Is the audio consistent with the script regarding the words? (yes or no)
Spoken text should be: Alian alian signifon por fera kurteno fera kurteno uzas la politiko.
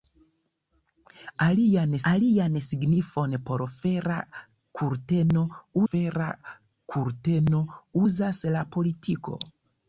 yes